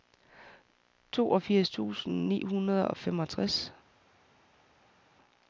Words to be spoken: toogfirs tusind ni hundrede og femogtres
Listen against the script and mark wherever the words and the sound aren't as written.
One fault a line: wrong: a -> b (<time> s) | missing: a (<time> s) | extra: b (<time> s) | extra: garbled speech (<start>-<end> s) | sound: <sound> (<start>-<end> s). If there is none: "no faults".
no faults